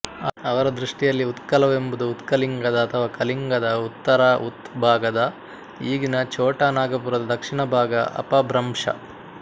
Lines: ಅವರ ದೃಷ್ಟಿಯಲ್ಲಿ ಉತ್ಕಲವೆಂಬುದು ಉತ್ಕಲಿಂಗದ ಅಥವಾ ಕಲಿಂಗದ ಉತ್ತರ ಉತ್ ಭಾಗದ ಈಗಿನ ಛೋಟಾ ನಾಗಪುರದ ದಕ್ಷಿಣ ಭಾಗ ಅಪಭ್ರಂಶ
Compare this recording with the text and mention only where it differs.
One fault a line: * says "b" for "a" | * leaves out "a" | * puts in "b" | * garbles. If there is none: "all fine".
all fine